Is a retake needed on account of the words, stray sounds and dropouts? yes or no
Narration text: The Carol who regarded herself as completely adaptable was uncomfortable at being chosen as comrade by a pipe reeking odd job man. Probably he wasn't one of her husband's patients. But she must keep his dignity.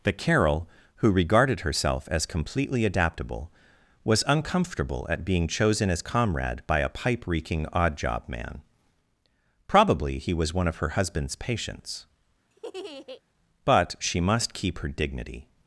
yes